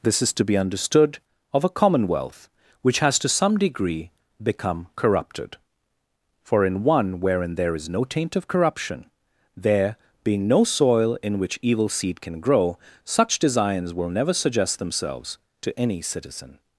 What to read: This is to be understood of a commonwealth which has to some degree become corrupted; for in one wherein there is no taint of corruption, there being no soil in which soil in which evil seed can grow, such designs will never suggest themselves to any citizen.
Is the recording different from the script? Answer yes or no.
yes